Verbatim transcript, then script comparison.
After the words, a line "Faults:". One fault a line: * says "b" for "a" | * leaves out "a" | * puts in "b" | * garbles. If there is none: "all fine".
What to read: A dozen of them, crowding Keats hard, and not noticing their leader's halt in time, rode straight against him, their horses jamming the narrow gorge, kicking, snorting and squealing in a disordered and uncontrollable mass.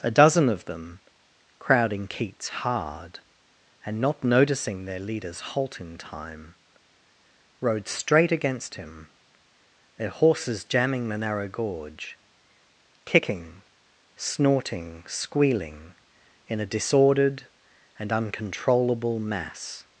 A dozen of them, crowding Keats hard, and not noticing their leader's halt in time, rode straight against him, their horses jamming the narrow gorge, kicking, snorting squealing in a disordered and uncontrollable mass.
Faults:
* leaves out "and"